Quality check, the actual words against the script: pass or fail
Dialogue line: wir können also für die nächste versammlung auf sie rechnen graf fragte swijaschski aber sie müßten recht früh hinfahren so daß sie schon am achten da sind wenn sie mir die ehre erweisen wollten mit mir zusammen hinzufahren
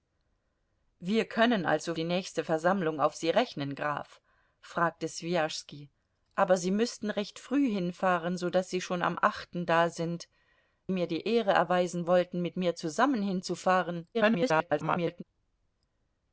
fail